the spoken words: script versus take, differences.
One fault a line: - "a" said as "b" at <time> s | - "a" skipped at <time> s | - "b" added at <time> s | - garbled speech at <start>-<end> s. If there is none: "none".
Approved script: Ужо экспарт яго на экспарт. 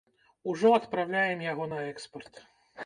- "экспарт" said as "адпраўляем" at 0.8 s